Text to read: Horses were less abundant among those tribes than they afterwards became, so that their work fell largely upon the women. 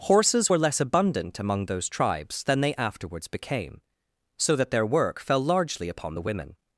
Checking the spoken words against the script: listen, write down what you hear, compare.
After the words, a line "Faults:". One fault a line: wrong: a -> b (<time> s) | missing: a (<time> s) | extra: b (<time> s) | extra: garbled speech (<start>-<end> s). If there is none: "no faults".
Horses were less abundant among those tribes than they afterwards became, so that their work fell largely upon the women.
Faults:
no faults